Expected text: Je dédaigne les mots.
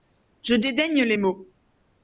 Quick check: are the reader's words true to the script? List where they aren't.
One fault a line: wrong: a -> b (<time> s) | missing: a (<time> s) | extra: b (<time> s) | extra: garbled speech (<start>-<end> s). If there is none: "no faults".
no faults